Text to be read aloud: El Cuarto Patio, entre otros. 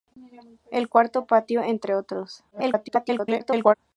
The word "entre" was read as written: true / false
true